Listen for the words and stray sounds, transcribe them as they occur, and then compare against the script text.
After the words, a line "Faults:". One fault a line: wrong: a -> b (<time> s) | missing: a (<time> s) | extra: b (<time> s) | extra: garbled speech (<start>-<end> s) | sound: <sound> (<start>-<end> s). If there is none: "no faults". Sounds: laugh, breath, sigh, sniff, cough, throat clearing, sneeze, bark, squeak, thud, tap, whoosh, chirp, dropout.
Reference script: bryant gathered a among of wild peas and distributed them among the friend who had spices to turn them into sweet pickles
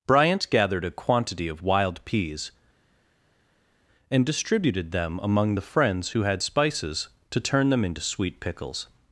bryant gathered a quantity of wild peas and distributed them among the friends who had spices to turn them into sweet pickles
Faults:
wrong: among -> quantity (0.9 s)
wrong: friend -> friends (5.6 s)